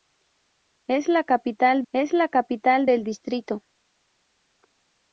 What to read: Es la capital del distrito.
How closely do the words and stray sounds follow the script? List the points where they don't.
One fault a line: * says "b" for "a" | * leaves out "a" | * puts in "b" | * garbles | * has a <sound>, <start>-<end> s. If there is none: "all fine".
* puts in "es la capital"